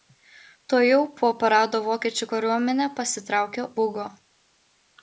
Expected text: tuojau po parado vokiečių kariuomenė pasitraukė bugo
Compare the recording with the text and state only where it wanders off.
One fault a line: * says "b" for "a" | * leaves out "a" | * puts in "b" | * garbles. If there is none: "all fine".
all fine